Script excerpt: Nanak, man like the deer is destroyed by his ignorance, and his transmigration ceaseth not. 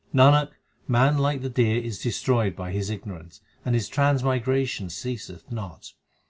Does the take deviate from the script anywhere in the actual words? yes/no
no